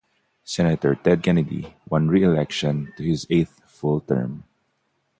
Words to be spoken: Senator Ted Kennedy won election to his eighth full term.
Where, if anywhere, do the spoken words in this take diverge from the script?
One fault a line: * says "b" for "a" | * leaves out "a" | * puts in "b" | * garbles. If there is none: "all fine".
* puts in "re"